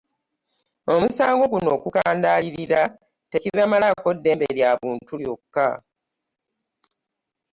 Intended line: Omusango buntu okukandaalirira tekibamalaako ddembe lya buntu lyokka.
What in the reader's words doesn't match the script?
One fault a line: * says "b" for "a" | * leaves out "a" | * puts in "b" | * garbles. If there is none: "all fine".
* says "guno" for "buntu"